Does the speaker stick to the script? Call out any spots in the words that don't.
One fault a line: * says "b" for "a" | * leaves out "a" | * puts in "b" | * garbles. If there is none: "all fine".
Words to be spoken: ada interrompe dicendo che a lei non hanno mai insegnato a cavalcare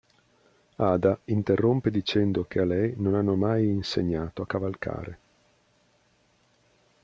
all fine